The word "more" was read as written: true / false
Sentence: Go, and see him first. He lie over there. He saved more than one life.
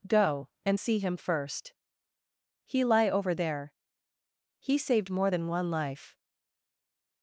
true